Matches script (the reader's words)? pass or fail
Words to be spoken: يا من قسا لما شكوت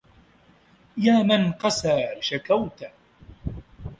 fail